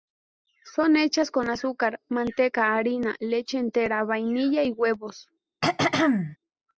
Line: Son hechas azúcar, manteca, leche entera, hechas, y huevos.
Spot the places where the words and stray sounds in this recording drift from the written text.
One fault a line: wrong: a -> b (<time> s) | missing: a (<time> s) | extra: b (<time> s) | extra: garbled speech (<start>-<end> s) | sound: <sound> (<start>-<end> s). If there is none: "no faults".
extra: con (1.3 s)
extra: harina (2.8 s)
wrong: hechas -> vainilla (4.0 s)
sound: throat clearing (5.6-6.4 s)